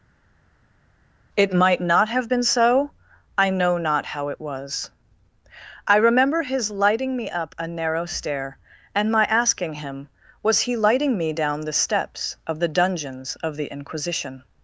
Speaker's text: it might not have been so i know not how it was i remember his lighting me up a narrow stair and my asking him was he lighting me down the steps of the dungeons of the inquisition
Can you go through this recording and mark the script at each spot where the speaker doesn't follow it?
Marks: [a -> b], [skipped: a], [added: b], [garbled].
it might not have been so i know not how it was i remember his lighting me up a narrow stair and my asking him was he lighting me down the steps of the dungeons of the inquisition